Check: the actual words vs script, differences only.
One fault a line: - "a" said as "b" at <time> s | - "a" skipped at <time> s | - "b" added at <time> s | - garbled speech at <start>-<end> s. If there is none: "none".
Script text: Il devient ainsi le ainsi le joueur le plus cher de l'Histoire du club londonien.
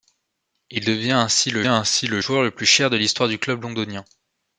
none